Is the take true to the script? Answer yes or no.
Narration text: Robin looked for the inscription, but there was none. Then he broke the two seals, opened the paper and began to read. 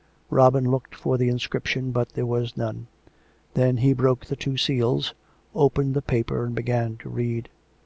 yes